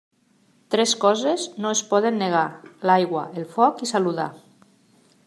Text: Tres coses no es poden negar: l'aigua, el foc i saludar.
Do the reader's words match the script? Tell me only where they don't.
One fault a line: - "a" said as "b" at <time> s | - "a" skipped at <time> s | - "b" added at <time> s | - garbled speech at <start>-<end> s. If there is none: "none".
none